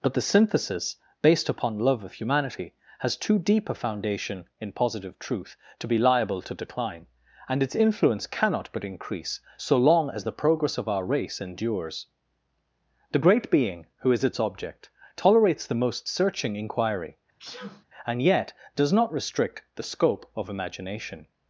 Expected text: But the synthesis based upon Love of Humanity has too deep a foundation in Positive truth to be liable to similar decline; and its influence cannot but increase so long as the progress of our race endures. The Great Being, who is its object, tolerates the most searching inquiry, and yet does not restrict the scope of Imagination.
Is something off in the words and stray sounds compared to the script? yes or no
yes